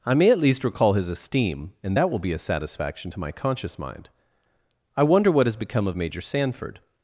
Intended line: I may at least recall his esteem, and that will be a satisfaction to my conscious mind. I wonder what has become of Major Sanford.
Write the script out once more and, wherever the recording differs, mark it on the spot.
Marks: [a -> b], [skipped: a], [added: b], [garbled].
I may at least recall his esteem, and that will be a satisfaction to my conscious mind. I wonder what has become of Major Sanford.